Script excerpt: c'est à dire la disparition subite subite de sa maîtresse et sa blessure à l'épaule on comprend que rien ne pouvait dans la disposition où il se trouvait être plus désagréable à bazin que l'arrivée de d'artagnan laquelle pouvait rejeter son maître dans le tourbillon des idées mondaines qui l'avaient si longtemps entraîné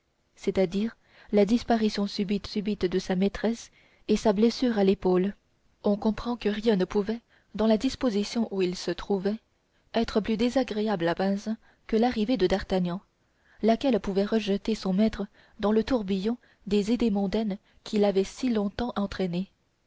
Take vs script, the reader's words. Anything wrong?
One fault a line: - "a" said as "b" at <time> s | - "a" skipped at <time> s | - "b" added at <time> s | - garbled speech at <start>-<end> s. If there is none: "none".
none